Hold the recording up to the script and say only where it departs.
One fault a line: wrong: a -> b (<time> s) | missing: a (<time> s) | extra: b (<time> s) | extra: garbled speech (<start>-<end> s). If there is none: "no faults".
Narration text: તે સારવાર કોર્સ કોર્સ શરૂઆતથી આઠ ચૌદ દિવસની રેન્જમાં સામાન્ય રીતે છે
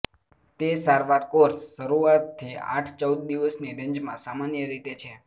missing: કોર્સ (1.6 s)